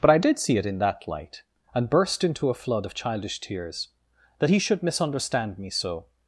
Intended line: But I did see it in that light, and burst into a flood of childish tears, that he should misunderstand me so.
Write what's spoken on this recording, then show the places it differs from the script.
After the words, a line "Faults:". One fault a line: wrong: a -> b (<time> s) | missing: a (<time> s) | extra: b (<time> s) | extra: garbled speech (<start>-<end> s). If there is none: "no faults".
But I did see it in that light, and burst into a flood of childish tears, that he should misunderstand me so.
Faults:
no faults